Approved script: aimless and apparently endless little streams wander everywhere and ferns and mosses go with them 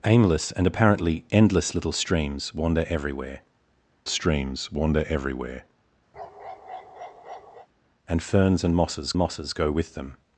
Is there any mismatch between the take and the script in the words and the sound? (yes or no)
yes